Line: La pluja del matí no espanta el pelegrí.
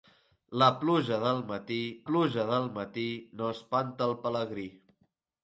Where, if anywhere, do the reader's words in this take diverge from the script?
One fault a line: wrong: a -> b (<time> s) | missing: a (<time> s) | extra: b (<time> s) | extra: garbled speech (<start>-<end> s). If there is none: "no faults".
extra: pluja del matí (2.1 s)